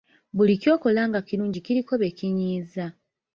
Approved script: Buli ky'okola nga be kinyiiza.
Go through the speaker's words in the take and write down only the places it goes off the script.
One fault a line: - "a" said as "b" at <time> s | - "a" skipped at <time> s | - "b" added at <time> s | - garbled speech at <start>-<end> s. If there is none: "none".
- "kirungi kiriko" added at 1.3 s